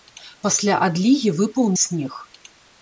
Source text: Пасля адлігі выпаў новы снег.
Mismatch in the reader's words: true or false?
true